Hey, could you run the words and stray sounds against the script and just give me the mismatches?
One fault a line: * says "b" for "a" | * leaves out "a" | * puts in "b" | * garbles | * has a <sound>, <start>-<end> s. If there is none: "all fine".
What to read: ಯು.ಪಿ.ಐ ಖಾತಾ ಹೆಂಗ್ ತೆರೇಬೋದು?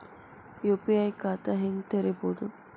all fine